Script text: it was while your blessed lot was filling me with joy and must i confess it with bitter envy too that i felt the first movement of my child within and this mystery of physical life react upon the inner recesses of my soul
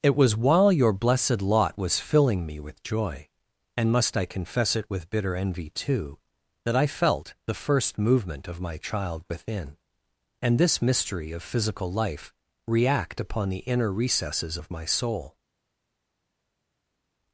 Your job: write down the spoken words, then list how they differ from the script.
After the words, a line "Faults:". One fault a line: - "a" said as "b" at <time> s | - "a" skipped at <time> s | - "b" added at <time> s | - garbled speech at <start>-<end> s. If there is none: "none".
it was while your blessed lot was filling me with joy and must i confess it with bitter envy too that i felt the first movement of my child within and this mystery of physical life react upon the inner recesses of my soul
Faults:
none